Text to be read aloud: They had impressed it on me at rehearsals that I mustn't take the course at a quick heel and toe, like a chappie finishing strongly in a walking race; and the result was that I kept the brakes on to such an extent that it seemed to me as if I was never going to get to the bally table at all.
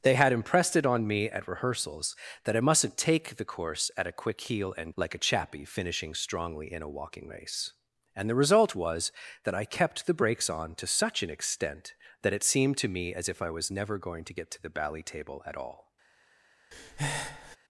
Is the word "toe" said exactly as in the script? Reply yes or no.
no